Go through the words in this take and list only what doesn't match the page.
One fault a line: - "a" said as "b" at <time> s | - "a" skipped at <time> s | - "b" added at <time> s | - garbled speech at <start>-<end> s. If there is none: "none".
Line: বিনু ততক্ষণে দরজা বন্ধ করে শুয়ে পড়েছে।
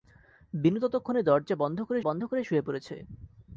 - "বন্ধ করে" added at 2.0 s